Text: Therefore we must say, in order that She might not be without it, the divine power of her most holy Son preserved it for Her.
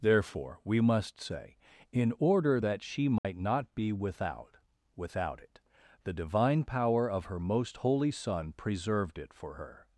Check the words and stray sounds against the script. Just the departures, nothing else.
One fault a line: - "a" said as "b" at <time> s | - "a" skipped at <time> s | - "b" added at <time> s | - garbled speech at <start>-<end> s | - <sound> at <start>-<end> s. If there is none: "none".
- dropout at 3.2-3.2 s
- "without" added at 4.9 s